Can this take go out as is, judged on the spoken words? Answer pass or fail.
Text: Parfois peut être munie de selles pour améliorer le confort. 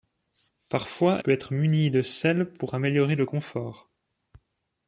pass